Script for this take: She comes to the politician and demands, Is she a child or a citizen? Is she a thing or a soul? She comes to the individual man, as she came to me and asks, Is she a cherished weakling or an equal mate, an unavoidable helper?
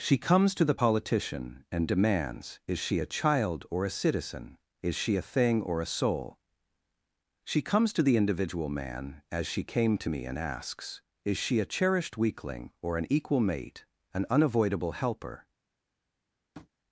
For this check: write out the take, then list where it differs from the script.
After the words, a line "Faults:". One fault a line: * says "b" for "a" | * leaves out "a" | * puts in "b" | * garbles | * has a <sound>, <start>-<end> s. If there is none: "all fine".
She comes to the politician and demands, Is she a child or a citizen? Is she a thing or a soul? She comes to the individual man, as she came to me and asks, Is she a cherished weakling or an equal mate, an unavoidable helper?
Faults:
* has a tap, 16.5-16.7 s